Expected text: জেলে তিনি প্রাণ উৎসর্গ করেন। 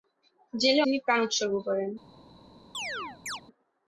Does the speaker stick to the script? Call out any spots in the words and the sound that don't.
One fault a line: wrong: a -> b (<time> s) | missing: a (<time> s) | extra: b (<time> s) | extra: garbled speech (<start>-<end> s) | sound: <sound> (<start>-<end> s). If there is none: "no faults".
sound: chirp (2.7-3.4 s)